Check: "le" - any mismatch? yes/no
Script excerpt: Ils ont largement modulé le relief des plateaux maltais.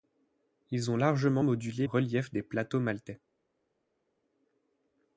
yes